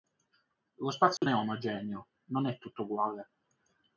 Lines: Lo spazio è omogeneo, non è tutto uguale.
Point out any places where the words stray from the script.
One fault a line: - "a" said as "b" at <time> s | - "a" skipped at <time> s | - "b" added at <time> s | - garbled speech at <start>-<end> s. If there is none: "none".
none